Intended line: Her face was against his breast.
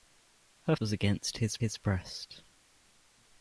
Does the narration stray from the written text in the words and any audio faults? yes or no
yes